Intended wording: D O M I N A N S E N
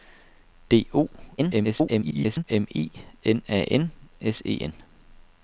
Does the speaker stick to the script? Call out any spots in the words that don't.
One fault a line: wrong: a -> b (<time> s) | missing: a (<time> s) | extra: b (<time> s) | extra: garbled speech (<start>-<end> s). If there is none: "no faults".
extra: garbled speech (1.4-2.4 s)